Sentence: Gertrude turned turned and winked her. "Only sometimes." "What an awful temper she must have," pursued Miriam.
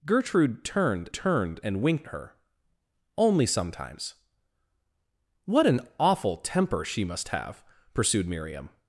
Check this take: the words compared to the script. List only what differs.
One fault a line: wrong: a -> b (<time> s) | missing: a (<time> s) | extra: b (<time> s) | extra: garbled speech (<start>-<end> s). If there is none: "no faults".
no faults